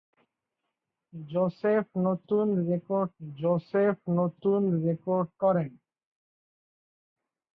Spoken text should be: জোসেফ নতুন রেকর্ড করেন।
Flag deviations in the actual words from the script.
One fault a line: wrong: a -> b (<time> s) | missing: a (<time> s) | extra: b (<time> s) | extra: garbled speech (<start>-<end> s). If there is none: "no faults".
extra: জোসেফ নতুন রেকর্ড (3.2 s)